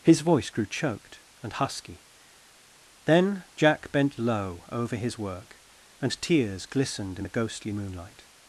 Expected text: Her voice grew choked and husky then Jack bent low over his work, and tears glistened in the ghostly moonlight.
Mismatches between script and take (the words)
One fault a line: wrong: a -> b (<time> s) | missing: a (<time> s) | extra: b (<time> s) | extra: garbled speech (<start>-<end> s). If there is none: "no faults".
wrong: Her -> His (0.0 s)